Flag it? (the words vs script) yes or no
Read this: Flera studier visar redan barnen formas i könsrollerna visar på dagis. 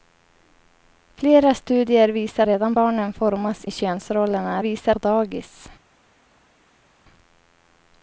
no